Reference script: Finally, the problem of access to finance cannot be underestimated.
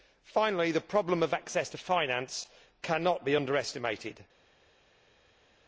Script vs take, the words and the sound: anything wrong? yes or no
no